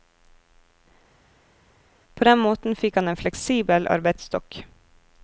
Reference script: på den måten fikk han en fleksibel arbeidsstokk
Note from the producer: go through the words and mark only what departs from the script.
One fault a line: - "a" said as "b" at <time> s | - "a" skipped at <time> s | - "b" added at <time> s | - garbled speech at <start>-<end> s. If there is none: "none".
none